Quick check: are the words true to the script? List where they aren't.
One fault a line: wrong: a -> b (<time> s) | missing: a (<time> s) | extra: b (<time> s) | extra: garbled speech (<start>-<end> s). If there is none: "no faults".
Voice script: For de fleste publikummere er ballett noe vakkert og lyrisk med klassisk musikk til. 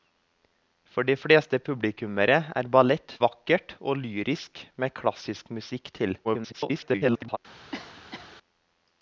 missing: noe (3.1 s)
extra: garbled speech (6.2-7.4 s)